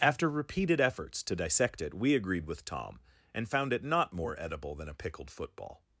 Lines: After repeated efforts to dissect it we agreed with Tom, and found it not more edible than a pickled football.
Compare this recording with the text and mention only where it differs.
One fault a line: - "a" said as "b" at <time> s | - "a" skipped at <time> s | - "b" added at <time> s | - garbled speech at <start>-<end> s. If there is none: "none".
none